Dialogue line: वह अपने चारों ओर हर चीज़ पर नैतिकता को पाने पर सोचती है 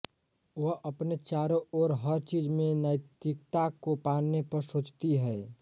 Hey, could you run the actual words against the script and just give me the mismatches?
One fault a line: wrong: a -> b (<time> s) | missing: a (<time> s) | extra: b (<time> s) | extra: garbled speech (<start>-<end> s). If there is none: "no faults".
wrong: पर -> में (2.5 s)